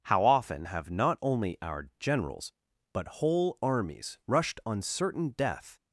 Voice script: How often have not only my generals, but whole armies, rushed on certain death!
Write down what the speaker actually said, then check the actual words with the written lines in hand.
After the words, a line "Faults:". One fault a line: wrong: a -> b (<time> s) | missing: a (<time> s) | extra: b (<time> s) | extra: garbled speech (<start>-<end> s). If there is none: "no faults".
How often have not only our generals, but whole armies, rushed on certain death!
Faults:
wrong: my -> our (1.6 s)